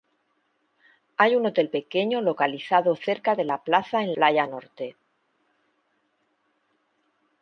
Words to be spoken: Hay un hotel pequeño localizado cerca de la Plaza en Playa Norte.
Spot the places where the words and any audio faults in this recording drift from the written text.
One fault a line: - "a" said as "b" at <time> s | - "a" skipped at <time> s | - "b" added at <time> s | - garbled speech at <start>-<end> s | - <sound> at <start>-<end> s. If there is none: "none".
none